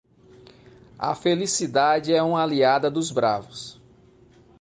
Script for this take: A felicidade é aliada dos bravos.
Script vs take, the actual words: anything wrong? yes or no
yes